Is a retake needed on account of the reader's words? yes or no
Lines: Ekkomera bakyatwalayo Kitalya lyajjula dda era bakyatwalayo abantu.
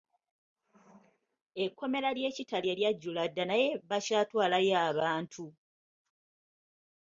yes